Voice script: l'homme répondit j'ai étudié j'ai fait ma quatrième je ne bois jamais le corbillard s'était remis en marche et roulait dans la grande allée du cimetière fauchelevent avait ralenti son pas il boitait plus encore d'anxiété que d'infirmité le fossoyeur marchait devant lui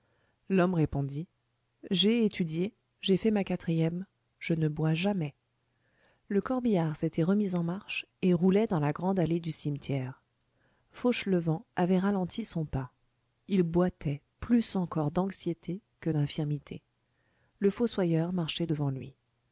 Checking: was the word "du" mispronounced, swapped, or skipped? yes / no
no